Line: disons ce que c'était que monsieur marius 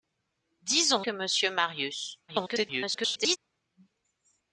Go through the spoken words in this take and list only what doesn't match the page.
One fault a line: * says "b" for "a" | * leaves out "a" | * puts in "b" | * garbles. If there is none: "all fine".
* leaves out "ce que c'était"
* garbles